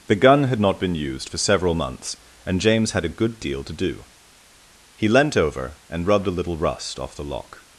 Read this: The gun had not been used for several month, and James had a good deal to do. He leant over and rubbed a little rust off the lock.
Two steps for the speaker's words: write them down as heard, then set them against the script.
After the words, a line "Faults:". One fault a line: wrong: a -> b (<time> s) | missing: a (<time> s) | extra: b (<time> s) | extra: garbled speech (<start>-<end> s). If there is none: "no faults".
The gun had not been used for several months, and James had a good deal to do. He leant over and rubbed a little rust off the lock.
Faults:
wrong: month -> months (1.8 s)